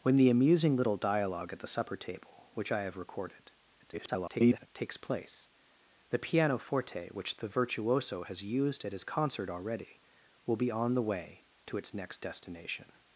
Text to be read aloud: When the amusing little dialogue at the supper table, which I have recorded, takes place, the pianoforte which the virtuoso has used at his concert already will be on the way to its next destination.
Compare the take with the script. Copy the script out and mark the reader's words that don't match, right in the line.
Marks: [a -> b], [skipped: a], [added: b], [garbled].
When the amusing little dialogue at the supper table, which I have recorded, [garbled] takes place, the pianoforte which the virtuoso has used at his concert already will be on the way to its next destination.